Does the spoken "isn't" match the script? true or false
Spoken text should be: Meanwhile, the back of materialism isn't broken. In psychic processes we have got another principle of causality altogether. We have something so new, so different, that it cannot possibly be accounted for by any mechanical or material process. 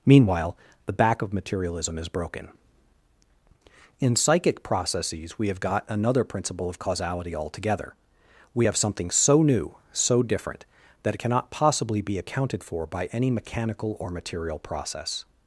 false